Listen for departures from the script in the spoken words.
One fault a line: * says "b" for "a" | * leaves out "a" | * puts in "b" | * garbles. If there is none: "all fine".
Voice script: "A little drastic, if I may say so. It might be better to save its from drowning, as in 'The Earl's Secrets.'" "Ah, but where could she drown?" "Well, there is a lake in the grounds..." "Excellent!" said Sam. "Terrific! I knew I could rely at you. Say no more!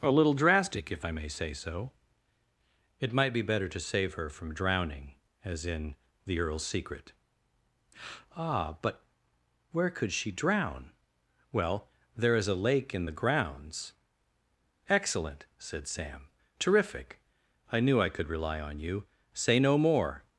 * says "her" for "its"
* says "Secret" for "Secrets"
* says "on" for "at"